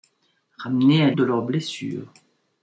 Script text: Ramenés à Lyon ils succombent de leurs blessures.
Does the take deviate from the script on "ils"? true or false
true